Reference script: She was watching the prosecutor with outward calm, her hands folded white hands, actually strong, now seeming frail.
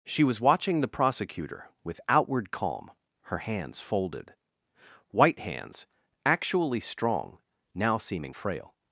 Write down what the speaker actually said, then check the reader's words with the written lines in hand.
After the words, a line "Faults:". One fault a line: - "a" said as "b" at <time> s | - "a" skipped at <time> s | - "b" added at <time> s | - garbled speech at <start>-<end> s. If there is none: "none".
She was watching the prosecutor with outward calm, her hands folded white hands, actually strong, now seeming frail.
Faults:
none